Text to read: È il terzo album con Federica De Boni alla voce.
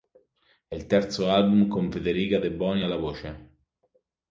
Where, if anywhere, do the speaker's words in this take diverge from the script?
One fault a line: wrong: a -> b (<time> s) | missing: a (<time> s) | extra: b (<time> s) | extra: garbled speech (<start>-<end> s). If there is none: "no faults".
no faults